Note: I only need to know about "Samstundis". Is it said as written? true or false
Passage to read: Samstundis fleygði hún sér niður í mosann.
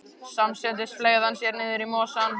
true